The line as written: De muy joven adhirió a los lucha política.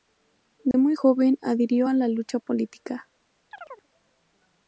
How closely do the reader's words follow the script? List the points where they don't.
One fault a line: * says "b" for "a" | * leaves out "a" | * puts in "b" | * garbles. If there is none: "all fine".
* says "la" for "los"